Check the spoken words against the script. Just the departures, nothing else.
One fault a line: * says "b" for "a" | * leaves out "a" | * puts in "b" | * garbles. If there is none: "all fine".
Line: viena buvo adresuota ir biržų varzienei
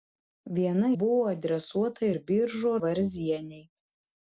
all fine